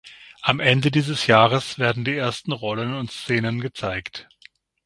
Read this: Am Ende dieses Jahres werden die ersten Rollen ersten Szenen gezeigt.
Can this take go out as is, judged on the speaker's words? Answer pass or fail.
fail